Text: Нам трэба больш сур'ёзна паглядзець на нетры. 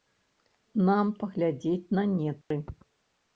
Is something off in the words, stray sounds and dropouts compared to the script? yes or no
yes